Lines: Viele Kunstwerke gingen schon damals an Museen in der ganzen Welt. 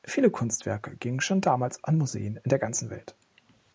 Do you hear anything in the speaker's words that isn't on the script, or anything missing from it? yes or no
no